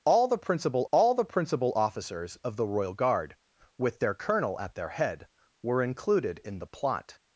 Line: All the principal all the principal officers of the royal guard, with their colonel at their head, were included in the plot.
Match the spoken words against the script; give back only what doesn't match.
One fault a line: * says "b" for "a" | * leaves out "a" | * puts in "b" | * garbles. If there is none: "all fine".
all fine